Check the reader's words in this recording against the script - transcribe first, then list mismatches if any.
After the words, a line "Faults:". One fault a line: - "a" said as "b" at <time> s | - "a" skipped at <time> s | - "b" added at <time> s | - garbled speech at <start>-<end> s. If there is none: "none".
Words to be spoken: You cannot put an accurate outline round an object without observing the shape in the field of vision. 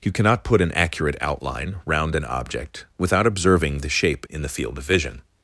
You cannot put an accurate outline round an object without observing the shape in the field of vision.
Faults:
none